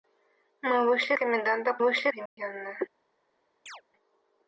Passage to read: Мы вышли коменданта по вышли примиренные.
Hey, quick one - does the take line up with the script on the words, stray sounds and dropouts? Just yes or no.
no